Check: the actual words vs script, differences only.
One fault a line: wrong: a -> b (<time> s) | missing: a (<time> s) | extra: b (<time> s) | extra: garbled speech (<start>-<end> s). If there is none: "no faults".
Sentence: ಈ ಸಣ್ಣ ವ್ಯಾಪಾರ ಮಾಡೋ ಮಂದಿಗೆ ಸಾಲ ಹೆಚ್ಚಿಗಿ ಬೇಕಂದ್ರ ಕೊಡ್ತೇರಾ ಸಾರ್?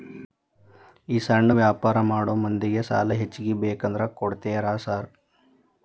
no faults